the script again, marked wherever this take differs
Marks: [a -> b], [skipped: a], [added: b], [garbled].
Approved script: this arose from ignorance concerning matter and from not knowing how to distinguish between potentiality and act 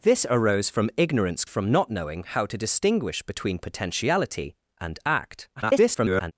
this arose from ignorance [skipped: concerning matter and] from not knowing how to distinguish between potentiality and act [garbled]